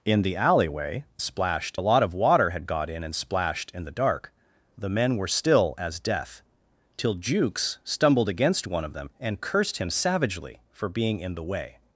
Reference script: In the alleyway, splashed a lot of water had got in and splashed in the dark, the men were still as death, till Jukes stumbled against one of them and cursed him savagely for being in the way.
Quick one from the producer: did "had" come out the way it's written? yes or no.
yes